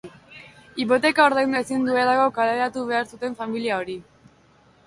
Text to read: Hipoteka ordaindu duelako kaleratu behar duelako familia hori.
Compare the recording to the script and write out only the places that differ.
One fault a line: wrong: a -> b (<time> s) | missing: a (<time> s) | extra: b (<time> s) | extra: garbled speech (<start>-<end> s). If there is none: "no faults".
extra: ezin (1.6 s)
wrong: duelako -> zuten (3.1 s)